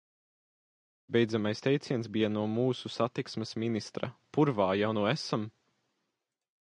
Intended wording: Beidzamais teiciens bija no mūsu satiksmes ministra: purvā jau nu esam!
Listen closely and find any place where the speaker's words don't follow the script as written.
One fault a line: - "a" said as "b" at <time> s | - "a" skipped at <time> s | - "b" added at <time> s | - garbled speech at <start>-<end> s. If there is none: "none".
none